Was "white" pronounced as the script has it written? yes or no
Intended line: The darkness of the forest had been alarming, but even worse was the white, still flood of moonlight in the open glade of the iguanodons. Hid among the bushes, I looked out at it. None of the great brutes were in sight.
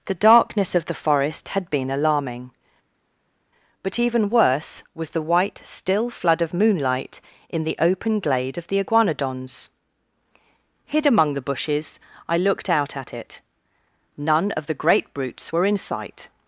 yes